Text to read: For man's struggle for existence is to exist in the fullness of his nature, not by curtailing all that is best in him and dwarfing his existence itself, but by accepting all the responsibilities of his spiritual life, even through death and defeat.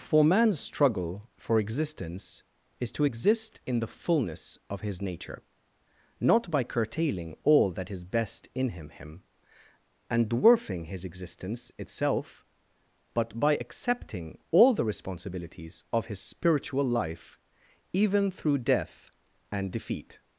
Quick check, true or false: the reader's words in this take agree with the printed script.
false